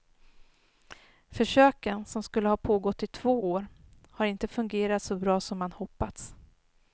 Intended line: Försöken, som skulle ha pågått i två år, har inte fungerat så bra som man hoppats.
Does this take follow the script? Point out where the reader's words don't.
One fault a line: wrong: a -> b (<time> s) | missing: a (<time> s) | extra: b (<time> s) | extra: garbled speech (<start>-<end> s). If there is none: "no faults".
no faults